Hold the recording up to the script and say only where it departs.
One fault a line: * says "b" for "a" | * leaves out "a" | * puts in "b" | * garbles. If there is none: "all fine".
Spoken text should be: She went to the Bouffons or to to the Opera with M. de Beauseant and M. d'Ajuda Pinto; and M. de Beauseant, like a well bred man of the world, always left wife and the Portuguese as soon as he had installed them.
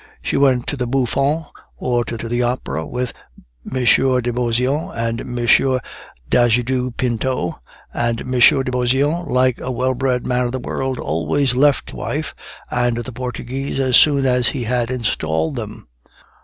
all fine